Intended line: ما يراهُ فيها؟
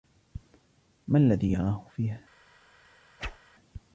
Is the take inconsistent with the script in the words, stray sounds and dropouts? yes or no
yes